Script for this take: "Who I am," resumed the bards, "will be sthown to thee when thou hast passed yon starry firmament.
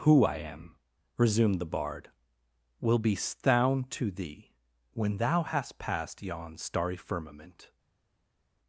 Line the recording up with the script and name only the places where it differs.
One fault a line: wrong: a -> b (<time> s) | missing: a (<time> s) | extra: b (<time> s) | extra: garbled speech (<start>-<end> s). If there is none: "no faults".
wrong: bards -> bard (1.7 s)